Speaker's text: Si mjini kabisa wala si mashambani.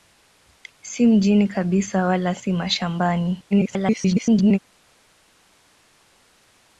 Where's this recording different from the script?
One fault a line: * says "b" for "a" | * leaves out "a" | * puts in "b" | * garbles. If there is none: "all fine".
* garbles